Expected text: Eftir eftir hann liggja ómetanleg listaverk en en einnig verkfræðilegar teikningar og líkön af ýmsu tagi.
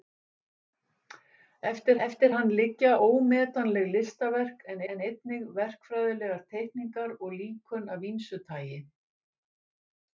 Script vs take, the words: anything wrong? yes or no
no